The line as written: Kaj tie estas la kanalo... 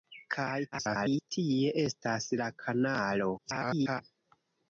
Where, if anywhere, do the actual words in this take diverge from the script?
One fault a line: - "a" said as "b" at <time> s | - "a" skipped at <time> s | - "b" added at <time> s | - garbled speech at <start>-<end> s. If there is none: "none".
- garbled speech at 0.7-1.3 s
- garbled speech at 3.4-4.0 s